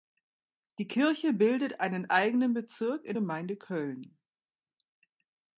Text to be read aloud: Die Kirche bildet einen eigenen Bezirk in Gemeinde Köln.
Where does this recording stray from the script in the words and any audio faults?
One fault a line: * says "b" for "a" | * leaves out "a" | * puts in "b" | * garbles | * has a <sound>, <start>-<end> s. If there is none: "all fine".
all fine